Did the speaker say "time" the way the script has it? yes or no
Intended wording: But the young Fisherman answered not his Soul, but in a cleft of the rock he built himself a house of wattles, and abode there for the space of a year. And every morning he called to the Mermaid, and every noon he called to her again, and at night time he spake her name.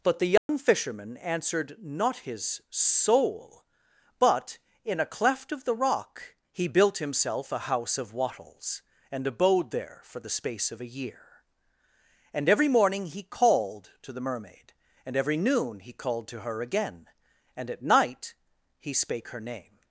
no